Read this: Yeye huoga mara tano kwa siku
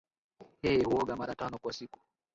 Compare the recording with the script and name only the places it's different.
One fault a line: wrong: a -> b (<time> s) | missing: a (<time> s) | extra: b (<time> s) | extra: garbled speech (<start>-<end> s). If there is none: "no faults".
no faults